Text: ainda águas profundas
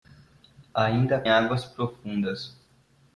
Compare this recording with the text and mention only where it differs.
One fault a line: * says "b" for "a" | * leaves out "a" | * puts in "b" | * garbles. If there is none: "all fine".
all fine